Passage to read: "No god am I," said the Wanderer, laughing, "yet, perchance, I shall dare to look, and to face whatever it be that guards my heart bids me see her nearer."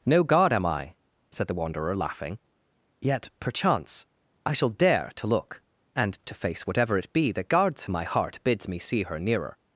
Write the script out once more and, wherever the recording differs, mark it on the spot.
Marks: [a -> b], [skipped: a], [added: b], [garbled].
"No god am I," said the Wanderer, laughing, "yet, perchance, I shall dare to look, and to face whatever it be that guards my heart bids me see her nearer."